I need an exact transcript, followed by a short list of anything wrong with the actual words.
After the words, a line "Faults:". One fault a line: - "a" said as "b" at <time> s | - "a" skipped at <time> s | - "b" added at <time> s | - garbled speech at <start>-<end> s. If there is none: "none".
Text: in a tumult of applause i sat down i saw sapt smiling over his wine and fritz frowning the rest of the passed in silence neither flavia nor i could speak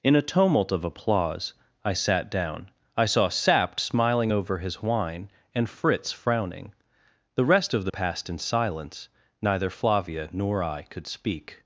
in a tumult of applause i sat down i saw sapt smiling over his wine and fritz frowning the rest of the passed in silence neither flavia nor i could speak
Faults:
none